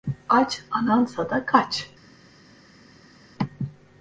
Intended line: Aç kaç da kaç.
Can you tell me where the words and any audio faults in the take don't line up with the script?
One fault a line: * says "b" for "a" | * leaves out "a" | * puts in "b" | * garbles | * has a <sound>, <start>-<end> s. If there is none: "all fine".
* says "anansa" for "kaç"